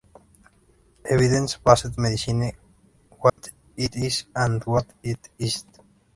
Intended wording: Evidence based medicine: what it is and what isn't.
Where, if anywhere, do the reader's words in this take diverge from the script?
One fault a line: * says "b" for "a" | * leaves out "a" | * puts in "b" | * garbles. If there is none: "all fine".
* puts in "it"